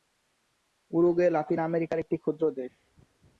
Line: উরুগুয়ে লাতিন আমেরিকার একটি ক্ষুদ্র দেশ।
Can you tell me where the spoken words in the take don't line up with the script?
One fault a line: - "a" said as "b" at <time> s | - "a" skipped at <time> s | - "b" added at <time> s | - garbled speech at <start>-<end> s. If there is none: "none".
none